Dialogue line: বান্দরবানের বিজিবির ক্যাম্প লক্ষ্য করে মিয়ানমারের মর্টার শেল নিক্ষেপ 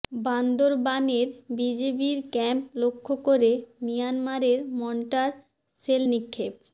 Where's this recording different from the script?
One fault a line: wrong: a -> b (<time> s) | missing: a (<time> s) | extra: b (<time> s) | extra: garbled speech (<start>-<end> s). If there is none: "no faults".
no faults